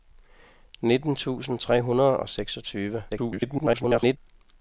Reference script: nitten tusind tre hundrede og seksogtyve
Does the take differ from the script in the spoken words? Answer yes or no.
yes